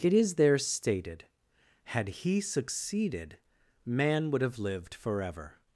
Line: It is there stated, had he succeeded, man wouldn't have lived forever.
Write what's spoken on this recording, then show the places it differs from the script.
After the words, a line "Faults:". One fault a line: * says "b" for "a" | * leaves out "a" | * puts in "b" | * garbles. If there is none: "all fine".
It is there stated, had he succeeded, man would have lived forever.
Faults:
* says "would" for "wouldn't"